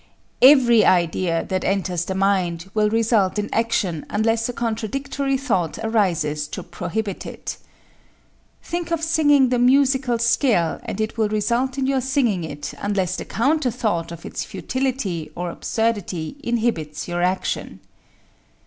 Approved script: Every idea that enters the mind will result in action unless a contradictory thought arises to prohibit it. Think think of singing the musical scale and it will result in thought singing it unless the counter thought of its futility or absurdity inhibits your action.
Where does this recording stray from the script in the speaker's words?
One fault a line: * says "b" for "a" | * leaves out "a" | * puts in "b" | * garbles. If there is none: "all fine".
* leaves out "think"
* says "your" for "thought"